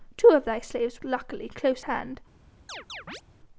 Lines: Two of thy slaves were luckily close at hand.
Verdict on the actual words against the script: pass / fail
fail